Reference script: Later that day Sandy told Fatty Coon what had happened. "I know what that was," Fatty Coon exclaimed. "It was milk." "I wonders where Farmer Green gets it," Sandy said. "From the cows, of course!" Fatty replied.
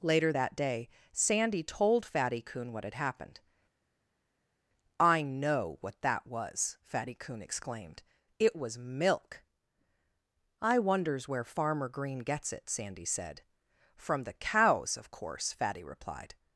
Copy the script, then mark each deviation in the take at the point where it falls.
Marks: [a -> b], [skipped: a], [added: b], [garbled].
Later that day Sandy told Fatty Coon what had happened. "I know what that was," Fatty Coon exclaimed. "It was milk." "I wonders where Farmer Green gets it," Sandy said. "From the cows, of course!" Fatty replied.